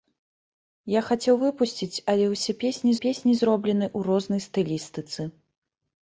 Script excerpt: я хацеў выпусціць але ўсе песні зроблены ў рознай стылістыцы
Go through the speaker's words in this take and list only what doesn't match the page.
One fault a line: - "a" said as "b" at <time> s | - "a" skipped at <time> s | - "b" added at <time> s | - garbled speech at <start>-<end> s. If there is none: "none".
- "песні" added at 3.1 s